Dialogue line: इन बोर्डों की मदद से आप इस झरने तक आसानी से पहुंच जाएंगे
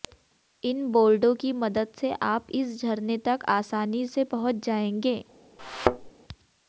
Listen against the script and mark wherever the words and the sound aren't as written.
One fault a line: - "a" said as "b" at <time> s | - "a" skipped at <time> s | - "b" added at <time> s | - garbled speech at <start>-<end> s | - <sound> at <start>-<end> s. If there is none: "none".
- thud at 5.6-6.1 s